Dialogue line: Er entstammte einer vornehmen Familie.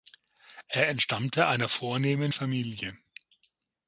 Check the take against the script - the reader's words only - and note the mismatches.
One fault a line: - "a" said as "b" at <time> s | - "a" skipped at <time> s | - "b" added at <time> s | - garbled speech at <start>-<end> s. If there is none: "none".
none